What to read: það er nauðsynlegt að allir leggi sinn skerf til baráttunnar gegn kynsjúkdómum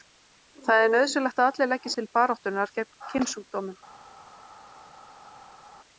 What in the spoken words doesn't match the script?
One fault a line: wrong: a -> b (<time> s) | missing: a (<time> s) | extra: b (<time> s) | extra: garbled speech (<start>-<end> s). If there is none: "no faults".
missing: sinn skerf (1.9 s)